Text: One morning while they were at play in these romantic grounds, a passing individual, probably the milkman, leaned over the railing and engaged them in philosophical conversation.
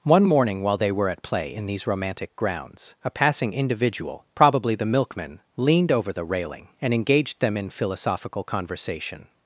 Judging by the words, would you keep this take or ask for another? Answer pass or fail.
pass